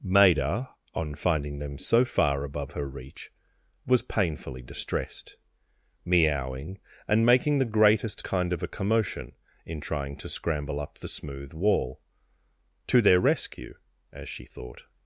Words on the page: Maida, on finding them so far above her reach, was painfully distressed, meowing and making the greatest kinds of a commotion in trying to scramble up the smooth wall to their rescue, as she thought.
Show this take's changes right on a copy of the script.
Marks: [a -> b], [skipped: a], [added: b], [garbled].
Maida, on finding them so far above her reach, was painfully distressed, meowing and making the greatest [kinds -> kind] of a commotion in trying to scramble up the smooth wall to their rescue, as she thought.